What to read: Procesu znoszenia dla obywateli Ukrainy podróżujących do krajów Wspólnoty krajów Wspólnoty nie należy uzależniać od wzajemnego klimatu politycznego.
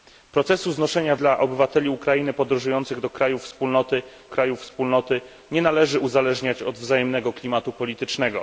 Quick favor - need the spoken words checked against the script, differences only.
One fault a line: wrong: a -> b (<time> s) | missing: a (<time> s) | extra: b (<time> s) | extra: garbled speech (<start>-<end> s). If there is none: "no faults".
no faults